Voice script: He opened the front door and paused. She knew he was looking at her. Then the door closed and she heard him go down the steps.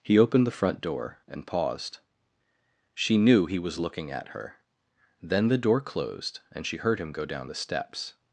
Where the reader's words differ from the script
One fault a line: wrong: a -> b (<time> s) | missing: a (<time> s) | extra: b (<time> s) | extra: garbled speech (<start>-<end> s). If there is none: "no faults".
no faults